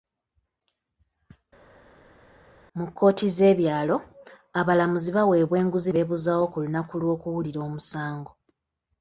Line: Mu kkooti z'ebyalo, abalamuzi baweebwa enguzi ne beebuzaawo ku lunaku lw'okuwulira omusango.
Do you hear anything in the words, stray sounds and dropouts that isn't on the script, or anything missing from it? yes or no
yes